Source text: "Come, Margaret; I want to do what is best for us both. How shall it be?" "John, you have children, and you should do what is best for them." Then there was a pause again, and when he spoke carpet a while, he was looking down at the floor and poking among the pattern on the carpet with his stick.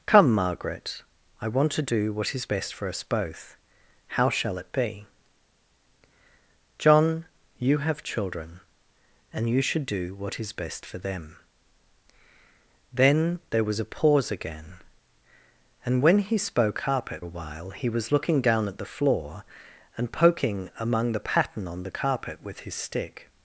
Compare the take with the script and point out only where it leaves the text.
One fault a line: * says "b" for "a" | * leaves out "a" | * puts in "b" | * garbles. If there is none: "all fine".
all fine